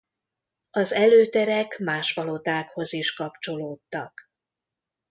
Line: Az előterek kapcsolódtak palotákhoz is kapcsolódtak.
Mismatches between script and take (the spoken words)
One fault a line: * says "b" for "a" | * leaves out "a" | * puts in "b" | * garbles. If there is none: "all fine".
* says "más" for "kapcsolódtak"